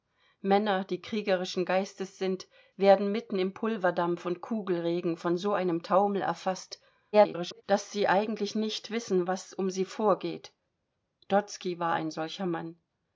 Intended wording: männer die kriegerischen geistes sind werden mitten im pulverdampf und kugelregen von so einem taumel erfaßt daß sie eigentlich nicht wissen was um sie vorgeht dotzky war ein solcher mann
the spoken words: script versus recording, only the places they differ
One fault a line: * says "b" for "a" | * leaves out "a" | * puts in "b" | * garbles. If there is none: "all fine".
* garbles